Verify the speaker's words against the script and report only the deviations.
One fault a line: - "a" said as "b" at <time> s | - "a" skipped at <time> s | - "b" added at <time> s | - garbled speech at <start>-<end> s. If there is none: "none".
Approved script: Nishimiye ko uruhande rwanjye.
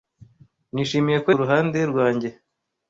none